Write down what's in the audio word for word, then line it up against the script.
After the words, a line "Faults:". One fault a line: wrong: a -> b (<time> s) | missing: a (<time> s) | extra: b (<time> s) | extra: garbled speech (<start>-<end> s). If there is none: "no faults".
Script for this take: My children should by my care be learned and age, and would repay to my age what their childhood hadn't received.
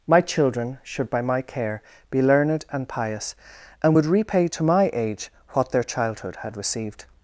My children should by my care be learned and pious, and would repay to my age what their childhood had received.
Faults:
wrong: age -> pious (2.9 s)
wrong: hadn't -> had (6.4 s)